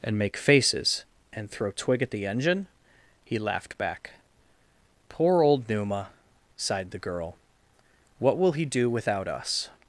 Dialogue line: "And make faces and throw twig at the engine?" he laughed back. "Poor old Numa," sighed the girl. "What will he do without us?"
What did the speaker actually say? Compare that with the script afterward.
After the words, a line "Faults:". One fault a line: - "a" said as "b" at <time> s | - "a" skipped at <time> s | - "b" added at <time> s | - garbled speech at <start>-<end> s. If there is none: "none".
"And make faces and throw twig at the engine?" he laughed back. "Poor old Numa," sighed the girl. "What will he do without us?"
Faults:
none